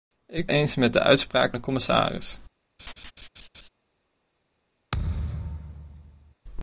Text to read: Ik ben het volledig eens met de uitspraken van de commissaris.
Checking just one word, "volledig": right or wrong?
wrong